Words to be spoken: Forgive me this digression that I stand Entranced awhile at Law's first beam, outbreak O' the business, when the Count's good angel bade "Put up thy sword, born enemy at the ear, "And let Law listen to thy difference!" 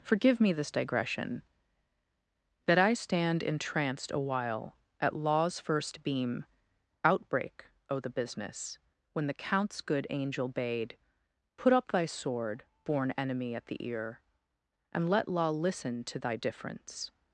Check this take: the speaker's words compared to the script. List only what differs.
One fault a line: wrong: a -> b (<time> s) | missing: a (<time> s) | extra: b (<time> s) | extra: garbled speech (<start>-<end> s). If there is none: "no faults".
no faults